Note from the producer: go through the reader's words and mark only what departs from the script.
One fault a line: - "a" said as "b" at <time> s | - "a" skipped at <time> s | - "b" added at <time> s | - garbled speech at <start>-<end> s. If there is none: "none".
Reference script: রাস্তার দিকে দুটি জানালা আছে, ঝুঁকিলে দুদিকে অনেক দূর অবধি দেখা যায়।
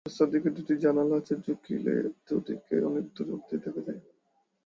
none